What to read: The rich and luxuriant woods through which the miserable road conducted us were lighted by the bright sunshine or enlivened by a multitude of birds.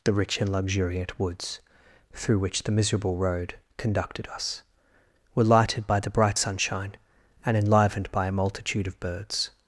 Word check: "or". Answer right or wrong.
wrong